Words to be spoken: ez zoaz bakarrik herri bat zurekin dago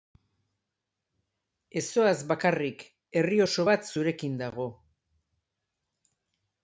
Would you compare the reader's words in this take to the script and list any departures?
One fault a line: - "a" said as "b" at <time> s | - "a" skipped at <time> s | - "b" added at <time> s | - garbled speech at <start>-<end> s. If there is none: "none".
- "oso" added at 3.5 s